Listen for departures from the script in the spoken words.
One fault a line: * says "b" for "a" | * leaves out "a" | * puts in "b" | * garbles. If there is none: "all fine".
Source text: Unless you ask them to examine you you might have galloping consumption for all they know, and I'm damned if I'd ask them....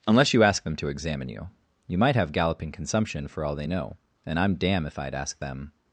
* says "damn" for "damned"